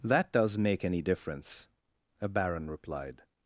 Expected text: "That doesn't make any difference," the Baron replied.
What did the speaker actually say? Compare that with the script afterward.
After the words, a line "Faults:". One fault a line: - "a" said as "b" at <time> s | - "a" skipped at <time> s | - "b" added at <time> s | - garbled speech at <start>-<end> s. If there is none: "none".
"That does make any difference," a Baron replied.
Faults:
- "doesn't" said as "does" at 0.3 s
- "the" said as "a" at 2.2 s